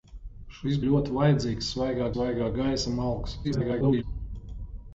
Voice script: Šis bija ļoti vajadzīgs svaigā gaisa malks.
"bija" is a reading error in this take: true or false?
true